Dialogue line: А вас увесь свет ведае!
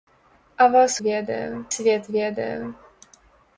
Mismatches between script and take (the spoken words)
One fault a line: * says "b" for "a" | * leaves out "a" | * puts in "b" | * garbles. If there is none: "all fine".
* says "ведае" for "увесь"